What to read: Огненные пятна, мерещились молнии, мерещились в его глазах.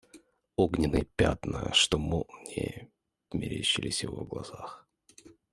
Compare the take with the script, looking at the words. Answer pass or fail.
fail